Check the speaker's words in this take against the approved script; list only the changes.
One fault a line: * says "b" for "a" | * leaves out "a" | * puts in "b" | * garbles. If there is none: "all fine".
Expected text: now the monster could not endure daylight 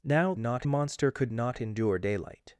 * says "not" for "the"